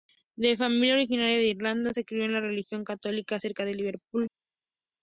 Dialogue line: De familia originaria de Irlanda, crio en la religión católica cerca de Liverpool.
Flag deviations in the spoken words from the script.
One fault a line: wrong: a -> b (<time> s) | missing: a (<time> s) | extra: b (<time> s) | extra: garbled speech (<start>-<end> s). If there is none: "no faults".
extra: se (1.9 s)